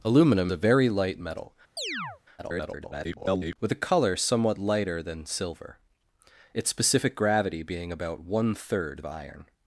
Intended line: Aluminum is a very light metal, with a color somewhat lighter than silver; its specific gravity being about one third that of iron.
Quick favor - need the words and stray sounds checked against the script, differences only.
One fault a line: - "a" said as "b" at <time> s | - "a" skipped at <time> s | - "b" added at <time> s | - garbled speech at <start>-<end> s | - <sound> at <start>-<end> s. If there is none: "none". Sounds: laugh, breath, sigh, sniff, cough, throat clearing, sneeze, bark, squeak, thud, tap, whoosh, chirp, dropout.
- "is" skipped at 0.5 s
- chirp at 1.8-2.2 s
- garbled speech at 2.4-3.6 s
- "that of" skipped at 9.0 s